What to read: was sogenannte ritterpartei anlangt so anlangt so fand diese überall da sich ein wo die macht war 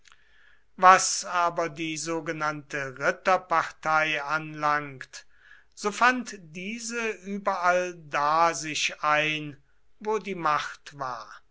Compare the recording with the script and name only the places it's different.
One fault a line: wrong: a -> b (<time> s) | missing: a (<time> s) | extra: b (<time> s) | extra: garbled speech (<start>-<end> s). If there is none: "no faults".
extra: aber die (1.2 s)
missing: anlangt so (5.9 s)